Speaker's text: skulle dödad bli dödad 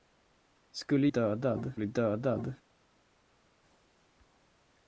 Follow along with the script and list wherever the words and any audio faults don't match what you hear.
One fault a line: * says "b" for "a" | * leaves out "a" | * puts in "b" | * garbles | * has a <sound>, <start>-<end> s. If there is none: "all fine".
all fine